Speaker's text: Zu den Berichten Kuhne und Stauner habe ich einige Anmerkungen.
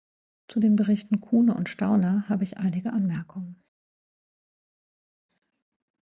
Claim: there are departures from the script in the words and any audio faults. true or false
false